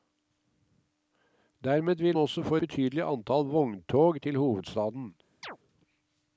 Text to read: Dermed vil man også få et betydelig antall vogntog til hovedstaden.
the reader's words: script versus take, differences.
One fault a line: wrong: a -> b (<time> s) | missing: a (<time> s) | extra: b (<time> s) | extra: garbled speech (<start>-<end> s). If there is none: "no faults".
missing: man (2.2 s)
missing: et (2.6 s)